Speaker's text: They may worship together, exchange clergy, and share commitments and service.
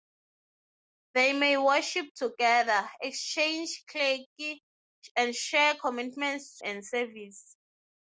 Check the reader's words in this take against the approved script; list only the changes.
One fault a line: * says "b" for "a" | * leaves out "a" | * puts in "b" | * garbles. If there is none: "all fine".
all fine